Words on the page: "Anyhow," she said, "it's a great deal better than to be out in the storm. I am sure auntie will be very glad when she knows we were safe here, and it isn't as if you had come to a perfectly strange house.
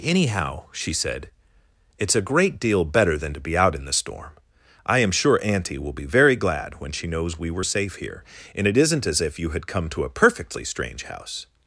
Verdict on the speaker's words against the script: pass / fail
pass